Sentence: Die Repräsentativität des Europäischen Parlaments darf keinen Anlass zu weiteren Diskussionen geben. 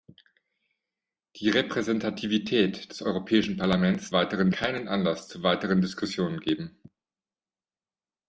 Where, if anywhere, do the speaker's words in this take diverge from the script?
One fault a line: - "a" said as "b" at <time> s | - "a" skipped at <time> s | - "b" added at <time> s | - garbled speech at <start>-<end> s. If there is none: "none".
- "darf" said as "weiteren" at 4.1 s